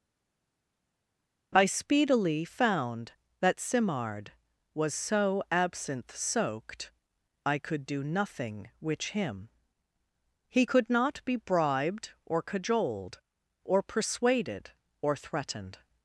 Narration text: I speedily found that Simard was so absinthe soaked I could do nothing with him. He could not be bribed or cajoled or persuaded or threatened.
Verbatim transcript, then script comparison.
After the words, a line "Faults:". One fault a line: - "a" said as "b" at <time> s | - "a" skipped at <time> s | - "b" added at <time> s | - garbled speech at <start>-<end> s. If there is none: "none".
I speedily found that Simard was so absinthe soaked I could do nothing which him. He could not be bribed or cajoled or persuaded or threatened.
Faults:
- "with" said as "which" at 8.8 s